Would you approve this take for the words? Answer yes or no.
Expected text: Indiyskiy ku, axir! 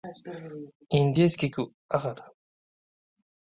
yes